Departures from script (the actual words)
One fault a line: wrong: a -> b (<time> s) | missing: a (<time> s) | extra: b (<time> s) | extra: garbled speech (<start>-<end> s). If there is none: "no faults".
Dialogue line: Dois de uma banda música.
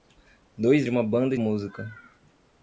no faults